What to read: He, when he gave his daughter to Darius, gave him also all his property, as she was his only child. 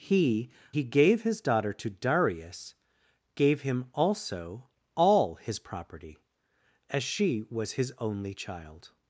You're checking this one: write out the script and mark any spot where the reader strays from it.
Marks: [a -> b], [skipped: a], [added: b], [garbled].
He, [skipped: when] he gave his daughter to Darius, gave him also all his property, as she was his only child.